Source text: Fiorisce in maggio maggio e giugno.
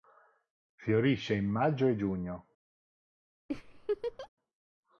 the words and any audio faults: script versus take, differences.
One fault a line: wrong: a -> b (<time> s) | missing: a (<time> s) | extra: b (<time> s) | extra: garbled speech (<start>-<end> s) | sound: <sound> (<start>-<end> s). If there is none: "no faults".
missing: maggio (1.9 s)
sound: laugh (3.5-4.3 s)